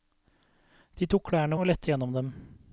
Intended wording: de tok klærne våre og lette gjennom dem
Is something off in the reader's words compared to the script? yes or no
yes